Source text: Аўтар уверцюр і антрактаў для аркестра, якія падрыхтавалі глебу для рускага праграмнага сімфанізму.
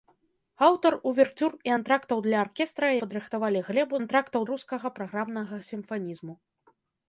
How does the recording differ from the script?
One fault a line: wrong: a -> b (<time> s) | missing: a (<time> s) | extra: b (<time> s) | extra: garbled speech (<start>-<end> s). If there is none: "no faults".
missing: якія (2.9 s)
wrong: для -> антрактаў (4.0 s)